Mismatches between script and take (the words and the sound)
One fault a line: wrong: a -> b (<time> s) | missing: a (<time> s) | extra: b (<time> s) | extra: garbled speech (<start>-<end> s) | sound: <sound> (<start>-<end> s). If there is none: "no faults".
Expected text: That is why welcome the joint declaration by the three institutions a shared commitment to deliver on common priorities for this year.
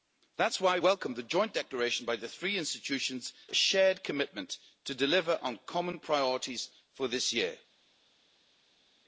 no faults